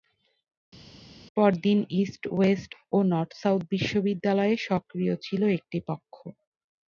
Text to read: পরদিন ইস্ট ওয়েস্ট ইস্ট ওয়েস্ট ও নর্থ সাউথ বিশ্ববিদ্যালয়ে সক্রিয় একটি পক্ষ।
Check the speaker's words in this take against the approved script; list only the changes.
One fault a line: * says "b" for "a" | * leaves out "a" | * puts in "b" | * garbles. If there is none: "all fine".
* leaves out "ইস্ট ওয়েস্ট"
* puts in "ছিল"